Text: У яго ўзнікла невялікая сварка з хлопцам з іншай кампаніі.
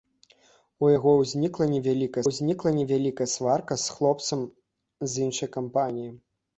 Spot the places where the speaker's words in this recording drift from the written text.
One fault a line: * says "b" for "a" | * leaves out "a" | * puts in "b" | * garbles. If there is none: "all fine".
* puts in "ўзнікла невялікая"